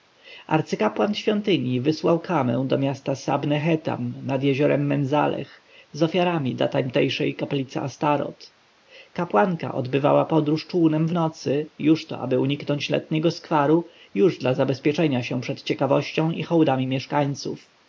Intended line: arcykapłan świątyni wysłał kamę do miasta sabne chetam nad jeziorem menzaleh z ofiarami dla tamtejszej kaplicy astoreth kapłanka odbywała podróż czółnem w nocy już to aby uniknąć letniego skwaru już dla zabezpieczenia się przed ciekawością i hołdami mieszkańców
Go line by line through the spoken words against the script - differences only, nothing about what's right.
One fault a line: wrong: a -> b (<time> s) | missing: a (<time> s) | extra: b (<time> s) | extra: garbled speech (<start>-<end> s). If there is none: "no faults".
no faults